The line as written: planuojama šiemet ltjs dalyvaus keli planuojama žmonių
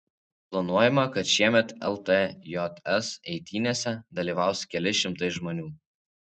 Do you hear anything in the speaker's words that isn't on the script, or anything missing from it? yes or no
yes